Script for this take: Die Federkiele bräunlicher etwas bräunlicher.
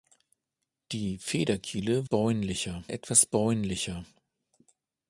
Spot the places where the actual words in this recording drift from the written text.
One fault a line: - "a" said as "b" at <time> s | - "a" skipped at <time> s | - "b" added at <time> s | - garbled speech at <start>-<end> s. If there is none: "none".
none